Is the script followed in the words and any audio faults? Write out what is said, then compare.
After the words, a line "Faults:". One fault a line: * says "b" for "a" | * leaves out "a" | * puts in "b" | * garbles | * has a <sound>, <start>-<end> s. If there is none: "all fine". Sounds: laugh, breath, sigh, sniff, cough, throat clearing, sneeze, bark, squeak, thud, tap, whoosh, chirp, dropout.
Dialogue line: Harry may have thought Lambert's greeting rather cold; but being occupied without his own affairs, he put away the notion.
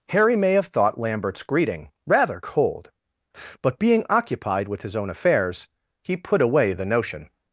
Harry may have thought Lambert's greeting rather cold; but being occupied with his own affairs, he put away the notion.
Faults:
* says "with" for "without"